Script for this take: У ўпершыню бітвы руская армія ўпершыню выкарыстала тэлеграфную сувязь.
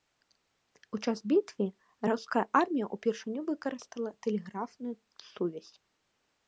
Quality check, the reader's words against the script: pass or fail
fail